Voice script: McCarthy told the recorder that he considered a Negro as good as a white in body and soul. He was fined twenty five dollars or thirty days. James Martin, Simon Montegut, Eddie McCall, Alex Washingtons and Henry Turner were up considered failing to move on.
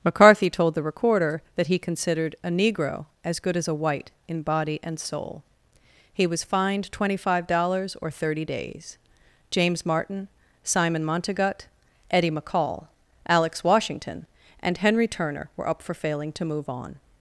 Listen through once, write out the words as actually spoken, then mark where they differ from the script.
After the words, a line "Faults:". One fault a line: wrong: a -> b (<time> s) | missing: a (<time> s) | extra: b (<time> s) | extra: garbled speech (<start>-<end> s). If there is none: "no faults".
McCarthy told the recorder that he considered a Negro as good as a white in body and soul. He was fined twenty five dollars or thirty days. James Martin, Simon Montegut, Eddie McCall, Alex Washington and Henry Turner were up for failing to move on.
Faults:
wrong: Washingtons -> Washington (13.6 s)
wrong: considered -> for (15.8 s)